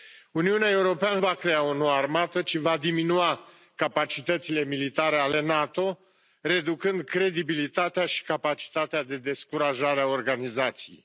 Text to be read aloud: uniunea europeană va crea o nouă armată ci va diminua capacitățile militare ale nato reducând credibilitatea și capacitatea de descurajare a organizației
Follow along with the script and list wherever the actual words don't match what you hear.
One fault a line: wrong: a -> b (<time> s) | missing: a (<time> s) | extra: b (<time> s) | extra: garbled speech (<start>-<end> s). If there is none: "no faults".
no faults